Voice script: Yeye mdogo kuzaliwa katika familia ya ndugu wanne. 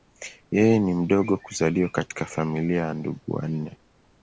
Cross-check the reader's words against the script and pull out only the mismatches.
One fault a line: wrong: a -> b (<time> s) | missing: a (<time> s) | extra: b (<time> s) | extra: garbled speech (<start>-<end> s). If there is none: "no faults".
extra: ni (0.8 s)